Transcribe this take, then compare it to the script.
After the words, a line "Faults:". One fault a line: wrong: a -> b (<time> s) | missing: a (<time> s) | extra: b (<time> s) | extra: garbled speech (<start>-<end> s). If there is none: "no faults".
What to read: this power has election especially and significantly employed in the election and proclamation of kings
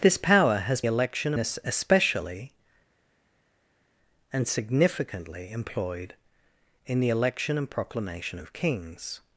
this power has election especially and significantly employed in the election and proclamation of kings
Faults:
no faults